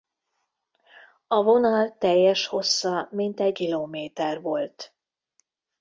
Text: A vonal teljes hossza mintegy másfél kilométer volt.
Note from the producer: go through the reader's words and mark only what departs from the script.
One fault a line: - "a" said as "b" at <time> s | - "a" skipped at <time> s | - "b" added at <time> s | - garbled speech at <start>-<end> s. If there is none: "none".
- "másfél" skipped at 3.6 s